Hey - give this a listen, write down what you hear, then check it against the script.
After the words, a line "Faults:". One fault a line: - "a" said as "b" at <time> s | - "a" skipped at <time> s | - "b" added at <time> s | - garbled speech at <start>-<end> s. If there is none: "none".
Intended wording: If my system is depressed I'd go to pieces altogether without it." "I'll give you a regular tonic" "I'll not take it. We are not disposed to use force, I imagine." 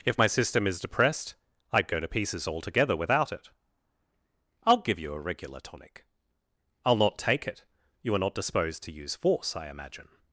If my system is depressed I'd go to pieces altogether without it." "I'll give you a regular tonic" "I'll not take it. You are not disposed to use force, I imagine."
Faults:
- "We" said as "You" at 8.0 s